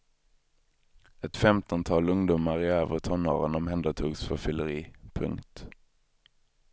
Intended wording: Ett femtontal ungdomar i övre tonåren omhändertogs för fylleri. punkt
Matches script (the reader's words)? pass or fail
pass